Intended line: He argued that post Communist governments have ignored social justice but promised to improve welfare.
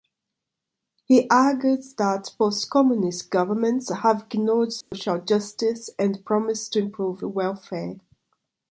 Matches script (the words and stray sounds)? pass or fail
fail